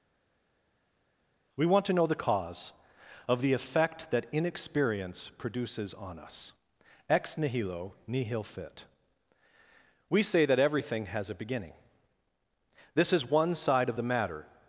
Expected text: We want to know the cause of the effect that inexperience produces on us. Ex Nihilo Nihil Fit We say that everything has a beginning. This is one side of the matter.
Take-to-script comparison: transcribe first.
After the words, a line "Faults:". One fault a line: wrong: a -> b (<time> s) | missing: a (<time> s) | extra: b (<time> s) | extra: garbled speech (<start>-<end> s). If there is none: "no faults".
We want to know the cause of the effect that inexperience produces on us. Ex Nihilo Nihil Fit We say that everything has a beginning. This is one side of the matter.
Faults:
no faults